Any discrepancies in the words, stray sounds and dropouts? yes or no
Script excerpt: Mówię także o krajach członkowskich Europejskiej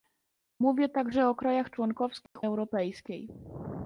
yes